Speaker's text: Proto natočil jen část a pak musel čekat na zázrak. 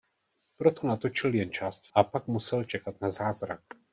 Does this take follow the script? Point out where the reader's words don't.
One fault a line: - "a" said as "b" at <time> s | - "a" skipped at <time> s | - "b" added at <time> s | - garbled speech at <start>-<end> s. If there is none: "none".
none